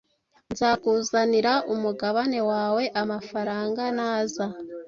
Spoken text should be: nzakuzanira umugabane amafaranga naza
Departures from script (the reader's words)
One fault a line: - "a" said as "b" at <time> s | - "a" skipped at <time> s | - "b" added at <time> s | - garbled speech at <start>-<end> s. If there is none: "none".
- "wawe" added at 2.5 s